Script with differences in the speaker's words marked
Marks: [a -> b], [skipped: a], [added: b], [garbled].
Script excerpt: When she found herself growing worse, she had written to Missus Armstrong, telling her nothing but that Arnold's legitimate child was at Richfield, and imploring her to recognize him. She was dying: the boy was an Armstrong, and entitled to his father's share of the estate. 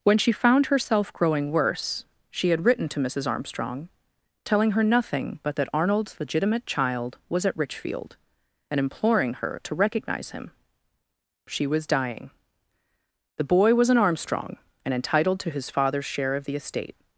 When she found herself growing worse, she had written to Missus Armstrong, telling her nothing but that Arnold's legitimate child was at Richfield, and imploring her to recognize him. She was dying: the boy was an Armstrong, and entitled to his father's share of the estate.